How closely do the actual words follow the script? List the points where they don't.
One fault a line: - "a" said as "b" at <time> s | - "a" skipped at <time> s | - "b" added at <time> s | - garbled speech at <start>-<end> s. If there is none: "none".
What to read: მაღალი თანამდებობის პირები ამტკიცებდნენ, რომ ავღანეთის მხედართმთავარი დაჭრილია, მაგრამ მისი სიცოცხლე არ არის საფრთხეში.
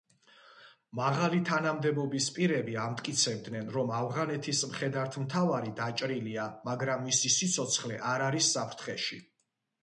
none